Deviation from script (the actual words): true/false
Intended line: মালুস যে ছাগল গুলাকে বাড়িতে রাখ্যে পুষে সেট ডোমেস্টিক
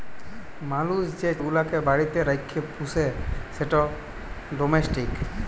true